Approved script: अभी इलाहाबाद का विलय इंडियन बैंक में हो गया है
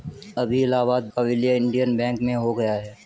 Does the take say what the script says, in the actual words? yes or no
yes